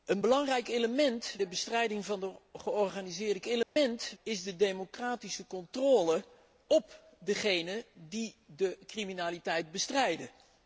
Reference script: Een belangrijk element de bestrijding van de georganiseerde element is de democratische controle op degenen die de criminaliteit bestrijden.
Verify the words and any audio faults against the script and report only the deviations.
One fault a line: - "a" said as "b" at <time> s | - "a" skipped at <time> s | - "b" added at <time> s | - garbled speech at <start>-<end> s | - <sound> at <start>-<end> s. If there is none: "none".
- dropout at 3.6-3.8 s